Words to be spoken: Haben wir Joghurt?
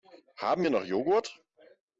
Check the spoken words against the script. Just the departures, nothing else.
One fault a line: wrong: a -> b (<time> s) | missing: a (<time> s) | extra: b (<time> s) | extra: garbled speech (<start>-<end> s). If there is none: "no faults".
extra: noch (0.7 s)